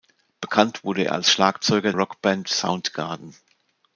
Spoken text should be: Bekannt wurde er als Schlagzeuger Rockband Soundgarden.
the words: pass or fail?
pass